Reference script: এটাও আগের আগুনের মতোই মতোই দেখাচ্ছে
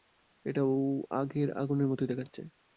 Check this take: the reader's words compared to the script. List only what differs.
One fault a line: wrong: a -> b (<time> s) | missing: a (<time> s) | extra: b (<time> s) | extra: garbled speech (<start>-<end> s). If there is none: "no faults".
missing: মতোই (2.1 s)